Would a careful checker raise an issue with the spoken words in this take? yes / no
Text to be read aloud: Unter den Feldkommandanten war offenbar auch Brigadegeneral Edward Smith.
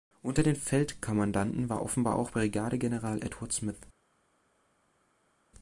no